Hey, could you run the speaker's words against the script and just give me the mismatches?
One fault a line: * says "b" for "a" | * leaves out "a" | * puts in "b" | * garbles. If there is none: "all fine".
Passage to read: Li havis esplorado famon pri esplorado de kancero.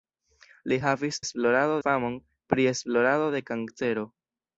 all fine